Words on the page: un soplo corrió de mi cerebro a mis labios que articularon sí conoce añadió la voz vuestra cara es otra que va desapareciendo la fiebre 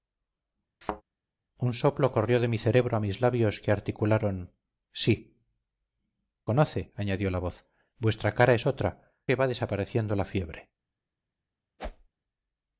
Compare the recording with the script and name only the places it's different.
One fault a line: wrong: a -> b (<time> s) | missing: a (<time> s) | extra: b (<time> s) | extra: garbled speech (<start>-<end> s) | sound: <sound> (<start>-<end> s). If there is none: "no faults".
sound: thud (0.8-1.0 s)
sound: whoosh (11.8-12.1 s)